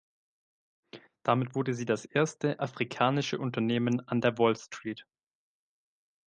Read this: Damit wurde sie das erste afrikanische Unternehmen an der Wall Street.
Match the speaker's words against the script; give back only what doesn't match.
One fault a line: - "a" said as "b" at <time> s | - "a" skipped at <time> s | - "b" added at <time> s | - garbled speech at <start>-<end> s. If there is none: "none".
none